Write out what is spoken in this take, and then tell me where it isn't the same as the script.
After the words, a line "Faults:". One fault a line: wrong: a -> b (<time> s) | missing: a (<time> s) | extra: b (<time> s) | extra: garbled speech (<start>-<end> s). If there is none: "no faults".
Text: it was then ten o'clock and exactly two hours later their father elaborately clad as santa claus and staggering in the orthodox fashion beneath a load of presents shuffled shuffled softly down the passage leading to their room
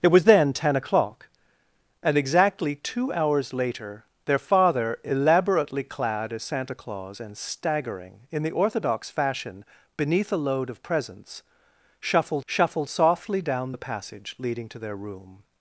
it was then ten o'clock and exactly two hours later their father elaborately clad as santa claus and staggering in the orthodox fashion beneath a load of presents shuffled shuffled softly down the passage leading to their room
Faults:
no faults